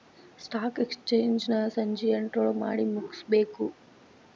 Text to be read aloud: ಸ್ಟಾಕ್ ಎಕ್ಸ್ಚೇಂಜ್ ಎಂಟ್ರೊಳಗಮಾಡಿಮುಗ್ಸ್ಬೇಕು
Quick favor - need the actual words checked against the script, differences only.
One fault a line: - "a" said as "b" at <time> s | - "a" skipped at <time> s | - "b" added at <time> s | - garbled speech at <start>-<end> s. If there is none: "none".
- "ನ ಸಂಜಿ" added at 1.5 s